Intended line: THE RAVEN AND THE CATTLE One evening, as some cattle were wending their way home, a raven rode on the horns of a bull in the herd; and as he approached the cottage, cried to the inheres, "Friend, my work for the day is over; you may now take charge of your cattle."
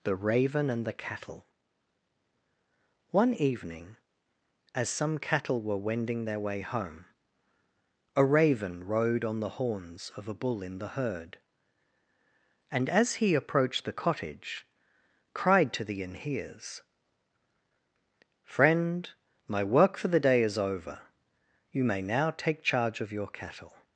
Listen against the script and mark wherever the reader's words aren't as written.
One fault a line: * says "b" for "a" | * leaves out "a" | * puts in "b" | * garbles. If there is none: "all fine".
all fine